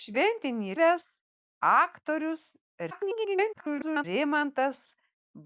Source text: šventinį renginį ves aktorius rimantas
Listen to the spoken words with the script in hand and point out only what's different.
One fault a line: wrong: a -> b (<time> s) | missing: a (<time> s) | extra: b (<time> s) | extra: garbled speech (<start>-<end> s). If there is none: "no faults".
missing: renginį (0.8 s)
extra: garbled speech (2.9-4.0 s)